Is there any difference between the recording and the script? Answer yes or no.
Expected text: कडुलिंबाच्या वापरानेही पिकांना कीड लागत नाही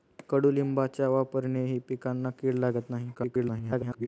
yes